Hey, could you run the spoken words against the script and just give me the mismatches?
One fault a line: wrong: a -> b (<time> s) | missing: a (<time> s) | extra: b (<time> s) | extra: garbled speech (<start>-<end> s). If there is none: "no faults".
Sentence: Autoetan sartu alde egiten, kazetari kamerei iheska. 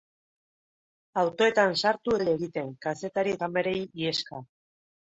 no faults